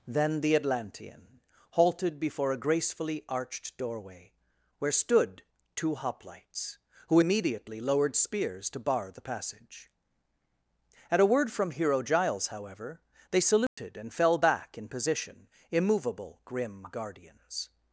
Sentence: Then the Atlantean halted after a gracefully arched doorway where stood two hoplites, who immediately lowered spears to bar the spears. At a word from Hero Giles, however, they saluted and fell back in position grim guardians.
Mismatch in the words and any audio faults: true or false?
true